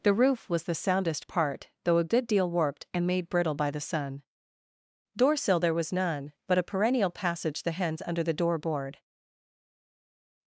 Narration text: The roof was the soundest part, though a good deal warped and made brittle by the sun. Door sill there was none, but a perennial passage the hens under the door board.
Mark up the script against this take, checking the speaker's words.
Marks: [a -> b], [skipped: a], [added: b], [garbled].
The roof was the soundest part, though a good deal warped and made brittle by the sun. Door sill there was none, but a perennial passage the hens under the door board.